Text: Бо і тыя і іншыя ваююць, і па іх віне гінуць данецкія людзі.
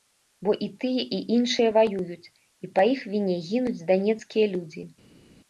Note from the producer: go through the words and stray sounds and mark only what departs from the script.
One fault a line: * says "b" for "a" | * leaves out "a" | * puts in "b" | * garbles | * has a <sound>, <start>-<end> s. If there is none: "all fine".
all fine